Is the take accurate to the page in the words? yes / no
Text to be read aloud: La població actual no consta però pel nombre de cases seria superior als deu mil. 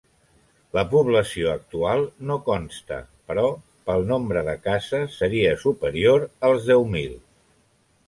yes